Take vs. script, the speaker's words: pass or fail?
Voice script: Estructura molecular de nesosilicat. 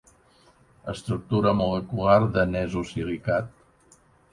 pass